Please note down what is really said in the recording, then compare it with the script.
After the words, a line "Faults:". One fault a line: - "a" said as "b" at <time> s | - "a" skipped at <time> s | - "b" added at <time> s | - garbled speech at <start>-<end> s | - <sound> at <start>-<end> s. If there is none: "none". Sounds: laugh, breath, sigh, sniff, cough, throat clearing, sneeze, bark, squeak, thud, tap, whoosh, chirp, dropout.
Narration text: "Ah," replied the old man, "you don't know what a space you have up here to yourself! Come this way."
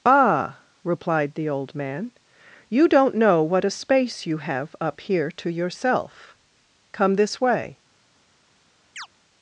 "Ah," replied the old man, "you don't know what a space you have up here to yourself! Come this way."
Faults:
- chirp at 9.0-9.1 s